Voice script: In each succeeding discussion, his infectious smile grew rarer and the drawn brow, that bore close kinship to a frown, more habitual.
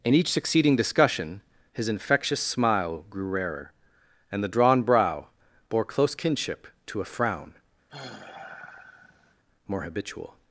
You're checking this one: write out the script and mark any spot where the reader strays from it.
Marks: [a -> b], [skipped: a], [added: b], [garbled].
In each succeeding discussion, his infectious smile grew rarer and the drawn brow, [skipped: that] bore close kinship to a frown, more habitual.